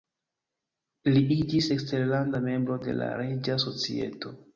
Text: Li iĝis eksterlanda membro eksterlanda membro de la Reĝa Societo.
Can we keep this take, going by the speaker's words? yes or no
no